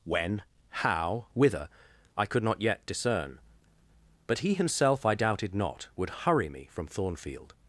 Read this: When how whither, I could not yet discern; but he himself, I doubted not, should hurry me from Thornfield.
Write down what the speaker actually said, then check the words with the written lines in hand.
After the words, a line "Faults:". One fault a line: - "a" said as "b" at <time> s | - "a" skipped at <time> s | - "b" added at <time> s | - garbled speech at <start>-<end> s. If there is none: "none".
When how whither, I could not yet discern; but he himself, I doubted not, would hurry me from Thornfield.
Faults:
- "should" said as "would" at 5.9 s